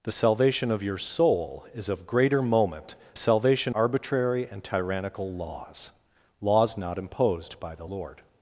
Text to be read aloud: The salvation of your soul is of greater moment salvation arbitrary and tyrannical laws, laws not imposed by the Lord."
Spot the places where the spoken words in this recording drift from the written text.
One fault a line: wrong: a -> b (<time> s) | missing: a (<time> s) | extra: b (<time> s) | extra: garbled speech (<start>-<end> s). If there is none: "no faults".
no faults